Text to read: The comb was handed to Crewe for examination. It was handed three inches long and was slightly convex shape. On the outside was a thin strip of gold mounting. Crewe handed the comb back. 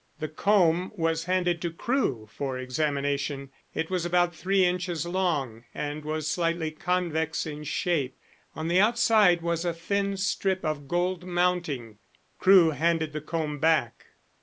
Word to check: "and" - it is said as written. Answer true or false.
true